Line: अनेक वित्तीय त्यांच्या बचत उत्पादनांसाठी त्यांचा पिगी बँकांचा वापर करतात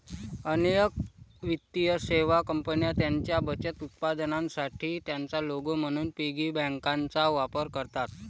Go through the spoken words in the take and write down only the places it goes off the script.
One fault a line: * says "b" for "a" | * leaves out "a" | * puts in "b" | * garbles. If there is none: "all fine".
* puts in "सेवा कंपन्या"
* puts in "लोगो म्हणून"